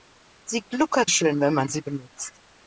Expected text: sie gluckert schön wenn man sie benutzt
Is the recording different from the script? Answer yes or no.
no